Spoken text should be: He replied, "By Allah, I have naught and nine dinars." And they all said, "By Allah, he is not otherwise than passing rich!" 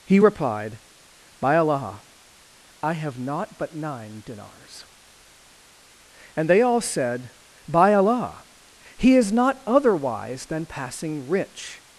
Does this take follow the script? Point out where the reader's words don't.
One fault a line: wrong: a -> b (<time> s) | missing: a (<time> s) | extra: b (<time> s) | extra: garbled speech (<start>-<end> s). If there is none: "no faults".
wrong: and -> but (3.6 s)